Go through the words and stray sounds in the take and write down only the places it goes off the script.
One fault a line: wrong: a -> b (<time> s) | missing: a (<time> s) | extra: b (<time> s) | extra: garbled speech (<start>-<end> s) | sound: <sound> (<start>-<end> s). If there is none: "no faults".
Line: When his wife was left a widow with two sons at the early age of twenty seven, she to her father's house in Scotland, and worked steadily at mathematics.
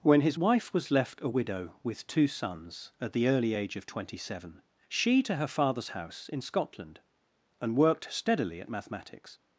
no faults